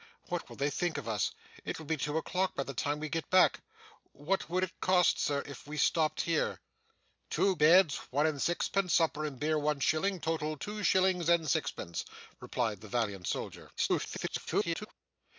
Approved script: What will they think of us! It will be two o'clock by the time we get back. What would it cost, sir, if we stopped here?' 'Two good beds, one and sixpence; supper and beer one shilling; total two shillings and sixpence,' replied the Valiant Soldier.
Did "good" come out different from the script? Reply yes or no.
yes